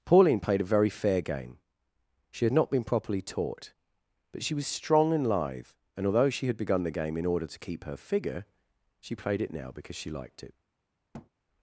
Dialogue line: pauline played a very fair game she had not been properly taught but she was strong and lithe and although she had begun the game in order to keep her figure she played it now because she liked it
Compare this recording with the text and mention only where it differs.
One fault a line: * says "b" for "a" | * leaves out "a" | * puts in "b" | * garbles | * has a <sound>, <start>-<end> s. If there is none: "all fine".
* has a thud, 11.1-11.3 s